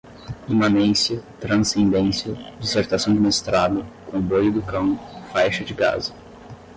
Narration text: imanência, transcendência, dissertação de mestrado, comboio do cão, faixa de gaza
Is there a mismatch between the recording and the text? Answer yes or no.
no